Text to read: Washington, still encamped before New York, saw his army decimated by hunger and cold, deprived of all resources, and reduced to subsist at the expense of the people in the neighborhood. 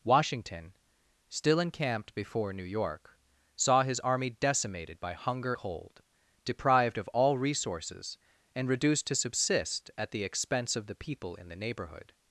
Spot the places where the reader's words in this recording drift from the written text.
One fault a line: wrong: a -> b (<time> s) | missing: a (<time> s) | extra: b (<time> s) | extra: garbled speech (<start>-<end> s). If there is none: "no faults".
missing: and (5.5 s)